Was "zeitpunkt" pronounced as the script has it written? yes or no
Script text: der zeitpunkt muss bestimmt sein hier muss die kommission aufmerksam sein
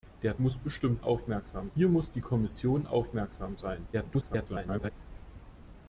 no